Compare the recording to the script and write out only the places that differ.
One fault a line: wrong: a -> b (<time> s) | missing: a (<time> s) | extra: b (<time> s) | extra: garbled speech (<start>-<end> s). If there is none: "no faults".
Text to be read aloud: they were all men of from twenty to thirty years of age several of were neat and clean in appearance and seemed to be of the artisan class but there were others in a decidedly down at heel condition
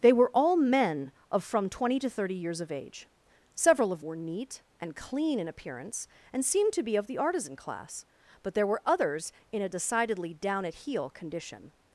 no faults